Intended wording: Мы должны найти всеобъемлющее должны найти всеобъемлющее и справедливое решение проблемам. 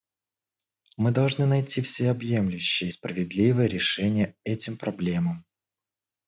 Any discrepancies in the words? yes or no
yes